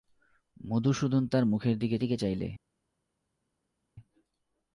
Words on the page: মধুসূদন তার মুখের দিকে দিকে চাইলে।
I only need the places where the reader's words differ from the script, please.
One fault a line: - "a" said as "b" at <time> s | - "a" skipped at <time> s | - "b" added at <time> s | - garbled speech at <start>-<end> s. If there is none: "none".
none